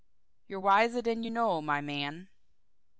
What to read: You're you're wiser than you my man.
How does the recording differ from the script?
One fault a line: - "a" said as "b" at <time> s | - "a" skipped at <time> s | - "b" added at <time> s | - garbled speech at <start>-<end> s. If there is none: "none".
- "you're" skipped at 0.6 s
- "know" added at 1.3 s